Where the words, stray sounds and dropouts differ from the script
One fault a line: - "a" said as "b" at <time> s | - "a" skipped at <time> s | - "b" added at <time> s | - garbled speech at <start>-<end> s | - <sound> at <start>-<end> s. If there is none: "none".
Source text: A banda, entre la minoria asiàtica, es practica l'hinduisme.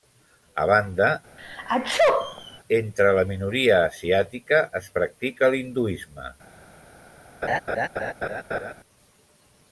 - sneeze at 1.4-2.6 s
- laugh at 7.4-8.7 s